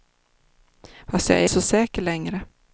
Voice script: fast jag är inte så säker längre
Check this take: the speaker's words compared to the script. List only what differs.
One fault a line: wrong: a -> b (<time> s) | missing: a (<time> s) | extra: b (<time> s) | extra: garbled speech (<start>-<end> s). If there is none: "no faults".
missing: inte (1.5 s)